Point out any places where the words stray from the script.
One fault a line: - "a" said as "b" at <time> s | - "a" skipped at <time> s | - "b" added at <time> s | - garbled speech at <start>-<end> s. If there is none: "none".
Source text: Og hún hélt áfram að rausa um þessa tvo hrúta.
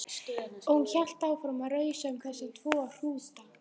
none